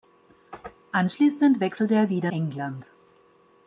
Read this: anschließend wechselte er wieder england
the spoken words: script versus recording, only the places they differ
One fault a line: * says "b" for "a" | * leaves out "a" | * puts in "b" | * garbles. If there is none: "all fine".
all fine